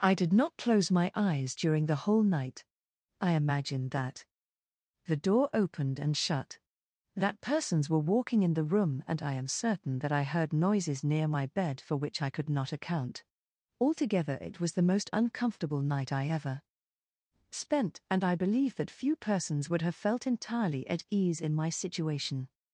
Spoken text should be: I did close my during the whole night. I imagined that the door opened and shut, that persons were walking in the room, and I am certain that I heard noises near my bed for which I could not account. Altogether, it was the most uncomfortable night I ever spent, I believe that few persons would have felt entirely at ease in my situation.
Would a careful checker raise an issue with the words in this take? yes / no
yes